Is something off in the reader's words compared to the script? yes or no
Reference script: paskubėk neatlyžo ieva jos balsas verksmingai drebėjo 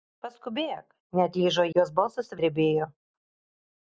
yes